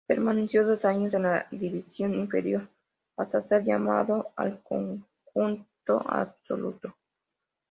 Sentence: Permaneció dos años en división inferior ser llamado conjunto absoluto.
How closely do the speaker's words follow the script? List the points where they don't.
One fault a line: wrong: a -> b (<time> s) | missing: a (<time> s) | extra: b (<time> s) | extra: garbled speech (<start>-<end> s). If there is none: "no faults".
extra: la (1.2 s)
extra: hasta (3.2 s)
extra: al (4.4 s)